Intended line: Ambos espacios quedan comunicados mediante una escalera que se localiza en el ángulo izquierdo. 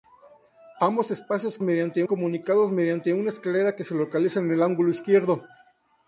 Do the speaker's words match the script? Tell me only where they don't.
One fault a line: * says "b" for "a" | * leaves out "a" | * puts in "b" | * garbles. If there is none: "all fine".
* says "mediante" for "quedan"